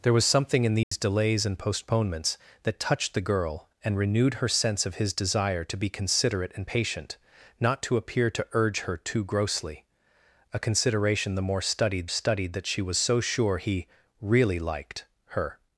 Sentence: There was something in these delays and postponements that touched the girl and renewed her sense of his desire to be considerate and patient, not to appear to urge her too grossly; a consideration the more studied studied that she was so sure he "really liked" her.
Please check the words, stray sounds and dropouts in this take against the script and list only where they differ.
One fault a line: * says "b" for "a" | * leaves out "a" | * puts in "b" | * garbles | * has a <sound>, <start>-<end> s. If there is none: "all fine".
* has a dropout, 0.8-0.9 s